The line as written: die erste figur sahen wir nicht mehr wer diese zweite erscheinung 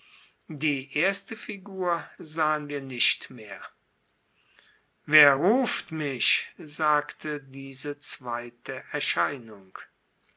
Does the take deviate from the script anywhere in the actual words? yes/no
yes